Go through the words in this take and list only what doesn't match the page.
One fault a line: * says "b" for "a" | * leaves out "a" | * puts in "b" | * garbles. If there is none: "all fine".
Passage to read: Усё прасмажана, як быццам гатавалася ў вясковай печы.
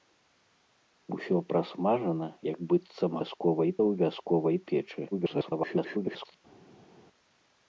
* says "вясковай" for "гатавалася"
* garbles